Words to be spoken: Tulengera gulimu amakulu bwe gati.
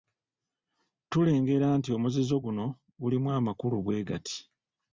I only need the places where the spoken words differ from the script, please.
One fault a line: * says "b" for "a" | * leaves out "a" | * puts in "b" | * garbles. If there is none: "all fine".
* puts in "nti omuzizo guno"